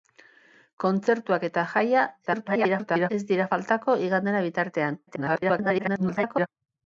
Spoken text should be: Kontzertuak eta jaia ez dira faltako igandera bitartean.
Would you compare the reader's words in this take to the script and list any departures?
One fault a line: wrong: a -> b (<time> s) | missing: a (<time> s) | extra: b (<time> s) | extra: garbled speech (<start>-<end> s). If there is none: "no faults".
extra: garbled speech (2.3-3.1 s)
extra: garbled speech (5.1-6.5 s)